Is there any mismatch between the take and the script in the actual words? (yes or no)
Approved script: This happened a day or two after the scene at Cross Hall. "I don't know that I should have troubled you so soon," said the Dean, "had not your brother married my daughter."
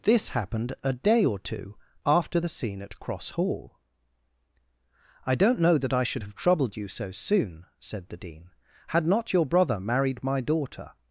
no